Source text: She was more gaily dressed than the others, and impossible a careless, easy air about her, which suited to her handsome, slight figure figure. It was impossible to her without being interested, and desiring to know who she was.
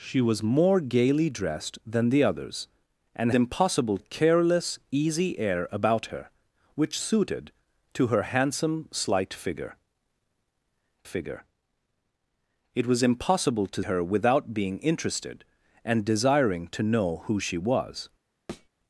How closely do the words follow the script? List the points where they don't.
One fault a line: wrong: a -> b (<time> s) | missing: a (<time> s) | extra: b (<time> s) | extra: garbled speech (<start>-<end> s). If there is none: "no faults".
no faults